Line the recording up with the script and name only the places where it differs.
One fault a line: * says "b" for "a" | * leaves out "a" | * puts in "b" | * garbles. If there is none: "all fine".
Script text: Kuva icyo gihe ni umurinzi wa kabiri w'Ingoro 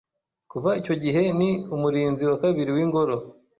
all fine